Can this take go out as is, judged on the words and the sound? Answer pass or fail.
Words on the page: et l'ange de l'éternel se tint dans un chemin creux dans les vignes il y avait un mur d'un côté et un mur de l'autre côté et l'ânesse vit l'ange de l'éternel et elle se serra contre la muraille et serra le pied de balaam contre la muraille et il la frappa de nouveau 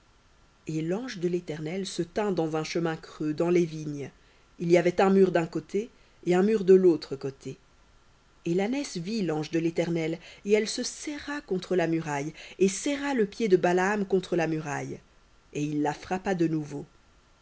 pass